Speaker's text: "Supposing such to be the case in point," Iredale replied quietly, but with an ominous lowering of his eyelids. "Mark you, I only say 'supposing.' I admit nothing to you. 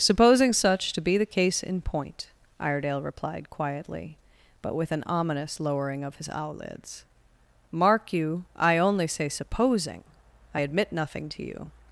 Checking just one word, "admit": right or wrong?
right